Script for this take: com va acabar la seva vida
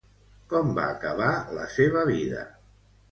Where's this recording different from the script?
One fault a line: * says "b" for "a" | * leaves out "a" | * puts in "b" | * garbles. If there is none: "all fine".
all fine